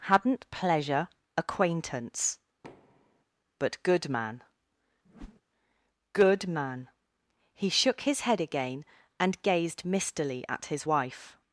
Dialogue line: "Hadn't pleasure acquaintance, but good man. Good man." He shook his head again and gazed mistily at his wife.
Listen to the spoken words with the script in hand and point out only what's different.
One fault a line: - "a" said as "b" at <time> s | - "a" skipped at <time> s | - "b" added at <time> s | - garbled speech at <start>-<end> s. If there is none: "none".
none